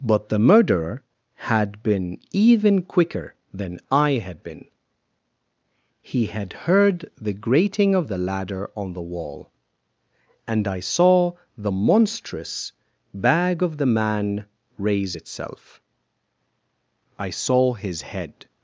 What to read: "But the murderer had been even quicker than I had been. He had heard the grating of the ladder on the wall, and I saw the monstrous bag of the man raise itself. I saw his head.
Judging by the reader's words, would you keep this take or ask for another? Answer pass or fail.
pass